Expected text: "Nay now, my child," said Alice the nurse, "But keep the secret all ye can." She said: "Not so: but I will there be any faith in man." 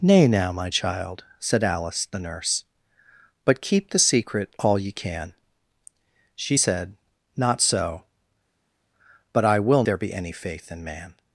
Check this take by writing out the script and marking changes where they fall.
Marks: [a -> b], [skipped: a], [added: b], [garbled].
"Nay now, my child," said Alice the nurse, "But keep the secret all ye can." She said: "Not so: but I will there be any faith in man."